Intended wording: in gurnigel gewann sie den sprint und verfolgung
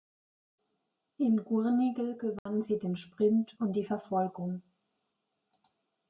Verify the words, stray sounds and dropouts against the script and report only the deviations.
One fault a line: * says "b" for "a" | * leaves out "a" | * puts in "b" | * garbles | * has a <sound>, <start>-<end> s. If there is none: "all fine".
* has a dropout, 2.4-2.5 s
* puts in "die"